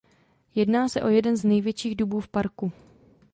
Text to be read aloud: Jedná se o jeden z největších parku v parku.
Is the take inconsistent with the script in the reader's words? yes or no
yes